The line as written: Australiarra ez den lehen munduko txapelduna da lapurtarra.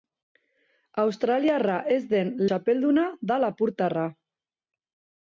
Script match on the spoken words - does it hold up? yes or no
no